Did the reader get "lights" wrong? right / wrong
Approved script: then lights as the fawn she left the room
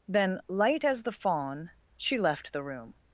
wrong